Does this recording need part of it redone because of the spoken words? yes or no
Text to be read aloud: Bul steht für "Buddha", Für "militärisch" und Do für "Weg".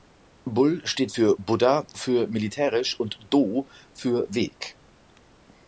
no